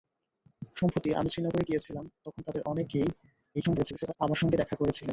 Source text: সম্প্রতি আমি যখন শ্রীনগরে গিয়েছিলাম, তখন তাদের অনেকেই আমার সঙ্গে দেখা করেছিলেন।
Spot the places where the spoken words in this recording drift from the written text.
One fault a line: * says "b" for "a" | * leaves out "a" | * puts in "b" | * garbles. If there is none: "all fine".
* leaves out "যখন"
* garbles